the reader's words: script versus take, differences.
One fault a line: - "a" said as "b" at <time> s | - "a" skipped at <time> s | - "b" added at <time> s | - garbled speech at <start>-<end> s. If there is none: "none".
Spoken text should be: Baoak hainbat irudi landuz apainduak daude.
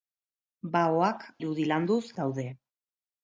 - "hainbat" skipped at 1.3 s
- "apainduak" skipped at 2.0 s